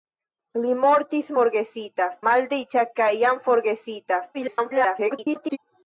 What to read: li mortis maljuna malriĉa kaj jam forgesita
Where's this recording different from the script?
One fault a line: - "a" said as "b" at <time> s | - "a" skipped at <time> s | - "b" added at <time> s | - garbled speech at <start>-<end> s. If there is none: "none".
- "maljuna" said as "forgesita" at 1.4 s
- garbled speech at 4.3-5.6 s